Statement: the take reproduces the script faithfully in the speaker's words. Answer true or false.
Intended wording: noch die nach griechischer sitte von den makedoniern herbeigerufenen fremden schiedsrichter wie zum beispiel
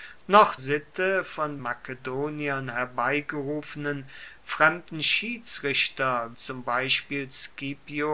false